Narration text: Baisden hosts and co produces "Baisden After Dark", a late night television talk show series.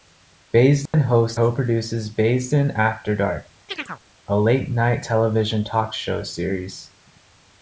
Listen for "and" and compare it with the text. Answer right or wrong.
wrong